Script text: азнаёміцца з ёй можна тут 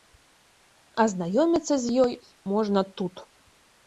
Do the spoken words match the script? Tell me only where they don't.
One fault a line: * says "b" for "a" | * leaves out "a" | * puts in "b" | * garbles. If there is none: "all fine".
all fine